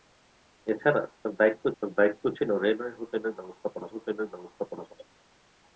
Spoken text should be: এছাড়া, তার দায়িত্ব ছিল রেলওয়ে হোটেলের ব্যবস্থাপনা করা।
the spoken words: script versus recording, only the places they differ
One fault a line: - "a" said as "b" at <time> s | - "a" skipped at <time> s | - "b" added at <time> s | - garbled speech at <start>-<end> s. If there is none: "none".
- "তার দায়িত্ব" added at 1.8 s
- "হোটেলের ব্যবস্থাপনা" added at 3.9 s